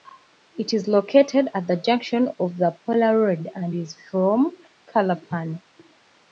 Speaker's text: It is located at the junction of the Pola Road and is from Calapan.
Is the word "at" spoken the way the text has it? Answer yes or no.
yes